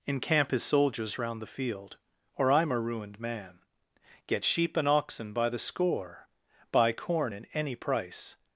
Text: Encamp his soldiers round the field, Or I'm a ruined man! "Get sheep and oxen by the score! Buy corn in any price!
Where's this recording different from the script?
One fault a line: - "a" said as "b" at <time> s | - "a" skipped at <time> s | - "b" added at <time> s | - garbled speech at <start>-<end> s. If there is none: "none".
none